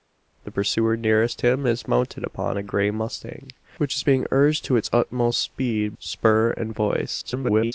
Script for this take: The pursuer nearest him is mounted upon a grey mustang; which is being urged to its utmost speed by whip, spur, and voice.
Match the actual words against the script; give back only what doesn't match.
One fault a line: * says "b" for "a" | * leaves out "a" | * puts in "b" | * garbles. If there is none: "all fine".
* leaves out "by whip"
* garbles